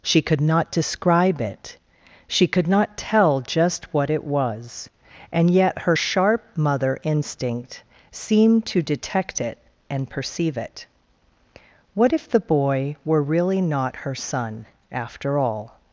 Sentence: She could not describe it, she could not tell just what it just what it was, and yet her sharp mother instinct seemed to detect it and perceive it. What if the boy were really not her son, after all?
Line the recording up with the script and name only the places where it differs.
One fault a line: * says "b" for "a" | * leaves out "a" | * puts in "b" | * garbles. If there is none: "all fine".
* leaves out "just what it"